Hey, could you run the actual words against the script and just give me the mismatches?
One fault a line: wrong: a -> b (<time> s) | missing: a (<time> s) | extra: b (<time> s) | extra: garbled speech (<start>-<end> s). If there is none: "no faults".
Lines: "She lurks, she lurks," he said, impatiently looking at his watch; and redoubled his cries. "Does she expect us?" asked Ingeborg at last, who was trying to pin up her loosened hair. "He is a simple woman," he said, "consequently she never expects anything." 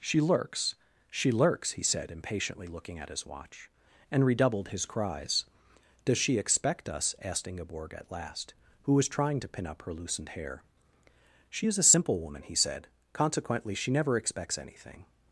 wrong: He -> She (11.5 s)